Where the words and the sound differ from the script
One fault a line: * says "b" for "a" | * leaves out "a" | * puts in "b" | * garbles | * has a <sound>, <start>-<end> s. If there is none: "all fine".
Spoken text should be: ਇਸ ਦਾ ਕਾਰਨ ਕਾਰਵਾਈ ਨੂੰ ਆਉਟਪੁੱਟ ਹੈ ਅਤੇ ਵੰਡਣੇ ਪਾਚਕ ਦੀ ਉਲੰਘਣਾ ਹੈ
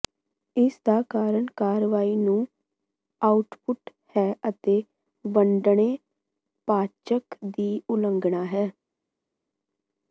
all fine